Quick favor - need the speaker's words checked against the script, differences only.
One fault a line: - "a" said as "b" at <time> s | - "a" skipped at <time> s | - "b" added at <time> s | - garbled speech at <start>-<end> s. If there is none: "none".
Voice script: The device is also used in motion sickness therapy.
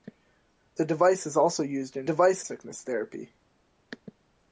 - "motion" said as "device" at 2.0 s